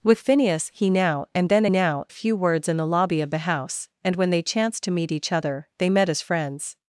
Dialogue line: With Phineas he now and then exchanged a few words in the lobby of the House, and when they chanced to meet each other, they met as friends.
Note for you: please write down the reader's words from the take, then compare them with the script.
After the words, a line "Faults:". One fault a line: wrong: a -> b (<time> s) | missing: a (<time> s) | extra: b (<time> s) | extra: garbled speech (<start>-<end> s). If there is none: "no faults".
With Phineas he now and then now a few words in the lobby of the House, and when they chanced to meet each other, they met as friends.
Faults:
wrong: exchanged -> now (1.7 s)